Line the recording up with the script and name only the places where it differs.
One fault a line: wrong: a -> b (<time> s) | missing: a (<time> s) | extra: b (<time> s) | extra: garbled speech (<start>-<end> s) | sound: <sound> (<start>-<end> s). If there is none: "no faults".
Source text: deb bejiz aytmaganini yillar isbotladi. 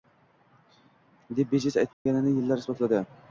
sound: dropout (1.9-2.1 s)